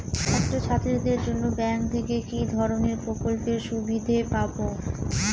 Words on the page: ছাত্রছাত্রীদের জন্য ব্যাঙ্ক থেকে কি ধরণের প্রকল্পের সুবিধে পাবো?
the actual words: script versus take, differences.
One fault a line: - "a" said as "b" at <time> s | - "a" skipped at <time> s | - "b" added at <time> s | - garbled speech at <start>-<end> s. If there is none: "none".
none